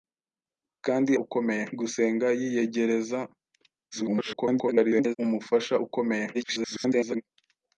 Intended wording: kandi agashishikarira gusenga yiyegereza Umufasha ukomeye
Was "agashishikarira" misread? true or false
true